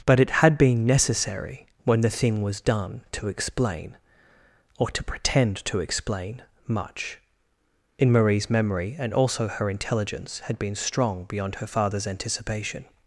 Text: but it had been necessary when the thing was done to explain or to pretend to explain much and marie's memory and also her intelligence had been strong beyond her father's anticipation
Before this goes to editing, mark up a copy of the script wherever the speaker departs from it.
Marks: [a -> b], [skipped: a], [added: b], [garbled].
but it had been necessary when the thing was done to explain or to pretend to explain much [and -> in] marie's memory and also her intelligence had been strong beyond her father's anticipation